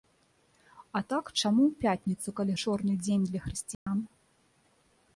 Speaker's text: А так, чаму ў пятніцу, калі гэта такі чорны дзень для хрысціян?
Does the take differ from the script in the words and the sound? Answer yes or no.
yes